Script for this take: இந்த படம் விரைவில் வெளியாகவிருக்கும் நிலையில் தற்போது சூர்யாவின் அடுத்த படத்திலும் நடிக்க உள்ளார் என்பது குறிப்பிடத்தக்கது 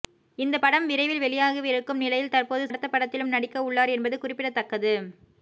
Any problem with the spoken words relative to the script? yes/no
yes